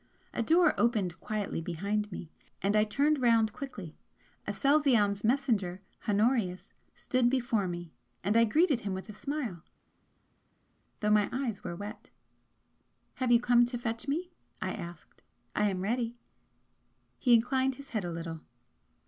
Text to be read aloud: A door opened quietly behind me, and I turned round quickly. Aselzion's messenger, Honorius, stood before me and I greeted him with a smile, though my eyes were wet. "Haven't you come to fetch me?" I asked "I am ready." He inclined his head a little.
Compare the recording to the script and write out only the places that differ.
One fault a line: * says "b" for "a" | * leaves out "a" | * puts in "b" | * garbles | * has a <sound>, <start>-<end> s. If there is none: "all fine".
* says "Have" for "Haven't"